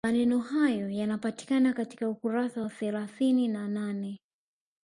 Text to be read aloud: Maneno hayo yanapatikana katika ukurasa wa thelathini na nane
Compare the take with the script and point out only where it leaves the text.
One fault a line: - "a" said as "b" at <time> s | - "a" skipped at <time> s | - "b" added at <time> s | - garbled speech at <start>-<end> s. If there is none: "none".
none